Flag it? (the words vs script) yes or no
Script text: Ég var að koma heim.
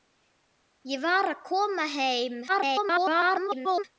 yes